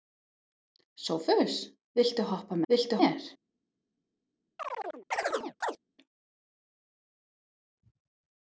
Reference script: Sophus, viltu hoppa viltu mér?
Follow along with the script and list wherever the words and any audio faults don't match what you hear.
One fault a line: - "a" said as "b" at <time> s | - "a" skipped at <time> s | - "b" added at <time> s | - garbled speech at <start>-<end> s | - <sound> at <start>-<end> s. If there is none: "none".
- chirp at 4.6-5.8 s